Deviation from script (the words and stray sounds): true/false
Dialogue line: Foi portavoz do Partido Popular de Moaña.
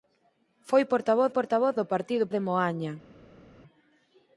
true